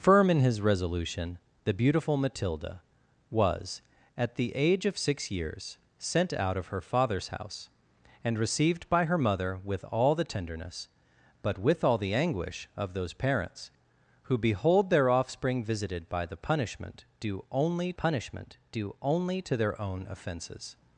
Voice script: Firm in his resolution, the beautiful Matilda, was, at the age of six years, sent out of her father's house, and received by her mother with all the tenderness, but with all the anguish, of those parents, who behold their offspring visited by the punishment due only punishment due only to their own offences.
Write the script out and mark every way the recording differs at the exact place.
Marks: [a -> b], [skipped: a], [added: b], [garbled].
Firm in his resolution, the beautiful Matilda, was, at the age of six years, sent out of her father's house, and received by her mother with all the tenderness, but with all the anguish, of those parents, who behold their offspring visited by the punishment due only punishment due only to their own offences.